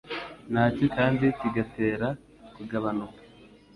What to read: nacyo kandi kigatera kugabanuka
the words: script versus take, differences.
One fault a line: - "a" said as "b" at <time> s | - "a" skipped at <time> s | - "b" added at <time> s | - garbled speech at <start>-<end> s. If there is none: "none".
none